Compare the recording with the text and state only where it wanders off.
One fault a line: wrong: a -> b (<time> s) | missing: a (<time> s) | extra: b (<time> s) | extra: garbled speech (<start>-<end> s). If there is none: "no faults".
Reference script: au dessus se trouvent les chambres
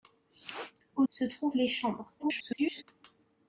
missing: dessus (1.1 s)
extra: garbled speech (2.2-2.8 s)